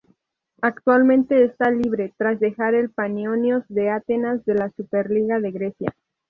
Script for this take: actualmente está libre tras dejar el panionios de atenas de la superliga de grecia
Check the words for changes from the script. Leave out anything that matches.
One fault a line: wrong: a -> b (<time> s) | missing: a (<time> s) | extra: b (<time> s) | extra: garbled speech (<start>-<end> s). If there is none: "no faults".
no faults